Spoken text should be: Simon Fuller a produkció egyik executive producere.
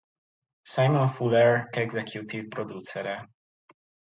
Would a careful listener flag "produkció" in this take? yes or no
yes